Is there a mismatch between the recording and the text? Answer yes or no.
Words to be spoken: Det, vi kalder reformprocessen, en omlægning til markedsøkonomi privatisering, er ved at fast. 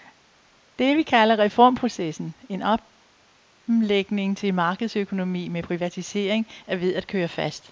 yes